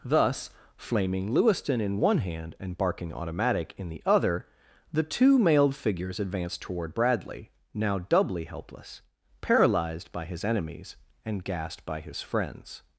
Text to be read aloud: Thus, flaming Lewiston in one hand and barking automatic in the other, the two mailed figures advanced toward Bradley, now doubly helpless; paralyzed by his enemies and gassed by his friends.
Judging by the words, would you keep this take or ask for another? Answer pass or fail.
pass